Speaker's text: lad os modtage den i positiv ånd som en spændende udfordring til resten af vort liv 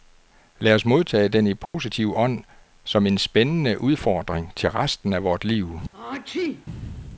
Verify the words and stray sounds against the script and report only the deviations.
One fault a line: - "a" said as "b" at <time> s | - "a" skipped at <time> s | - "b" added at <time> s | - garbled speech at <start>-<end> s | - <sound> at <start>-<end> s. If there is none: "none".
- dropout at 1.7-1.7 s
- sneeze at 5.9-6.7 s